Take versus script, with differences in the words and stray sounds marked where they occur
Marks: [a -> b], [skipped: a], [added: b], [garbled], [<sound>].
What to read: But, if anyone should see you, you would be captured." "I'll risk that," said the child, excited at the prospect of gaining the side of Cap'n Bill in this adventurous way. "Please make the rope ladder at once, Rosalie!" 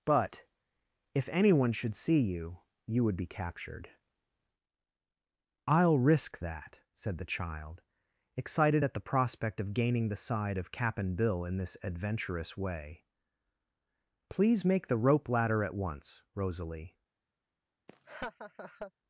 But, if anyone should see you, you would be captured." "I'll risk that," said the child, excited at the prospect of gaining the side of Cap'n Bill in this adventurous way. "Please make the rope ladder at once, Rosalie!" [laugh]